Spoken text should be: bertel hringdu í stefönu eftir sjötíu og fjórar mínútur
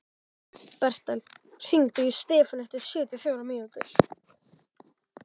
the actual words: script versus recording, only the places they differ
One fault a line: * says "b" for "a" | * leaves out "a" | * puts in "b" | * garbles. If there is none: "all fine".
all fine